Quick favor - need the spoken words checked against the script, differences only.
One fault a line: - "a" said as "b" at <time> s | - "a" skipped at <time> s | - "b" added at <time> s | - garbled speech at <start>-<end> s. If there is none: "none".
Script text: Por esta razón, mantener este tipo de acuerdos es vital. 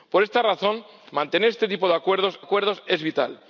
- "acuerdos" added at 2.4 s